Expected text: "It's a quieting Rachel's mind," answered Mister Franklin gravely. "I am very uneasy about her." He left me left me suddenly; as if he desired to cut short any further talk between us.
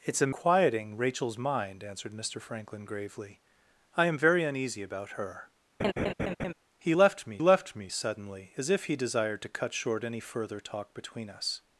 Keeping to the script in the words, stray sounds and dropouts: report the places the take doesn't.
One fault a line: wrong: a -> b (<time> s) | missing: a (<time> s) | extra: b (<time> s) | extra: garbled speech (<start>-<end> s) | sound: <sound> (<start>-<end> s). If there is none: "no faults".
sound: laugh (5.8-6.5 s)